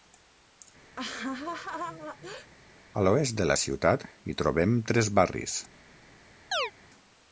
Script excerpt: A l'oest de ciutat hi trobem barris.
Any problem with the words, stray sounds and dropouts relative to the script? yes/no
yes